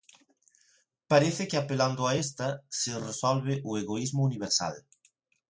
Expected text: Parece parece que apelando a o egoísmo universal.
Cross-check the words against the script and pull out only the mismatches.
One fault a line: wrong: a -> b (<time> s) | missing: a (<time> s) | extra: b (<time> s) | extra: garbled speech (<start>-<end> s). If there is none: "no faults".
missing: parece (1.5 s)
extra: esta se resolve (2.1 s)